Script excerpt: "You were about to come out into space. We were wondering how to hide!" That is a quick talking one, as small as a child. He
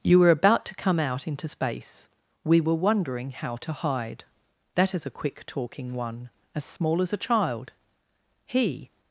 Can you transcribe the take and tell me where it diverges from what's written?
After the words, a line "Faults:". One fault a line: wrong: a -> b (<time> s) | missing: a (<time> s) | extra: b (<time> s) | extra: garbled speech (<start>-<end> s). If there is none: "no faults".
"You were about to come out into space. We were wondering how to hide!" That is a quick talking one, as small as a child. He
Faults:
no faults